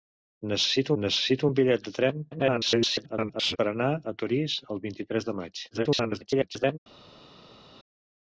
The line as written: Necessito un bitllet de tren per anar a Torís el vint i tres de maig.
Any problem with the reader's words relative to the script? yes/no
yes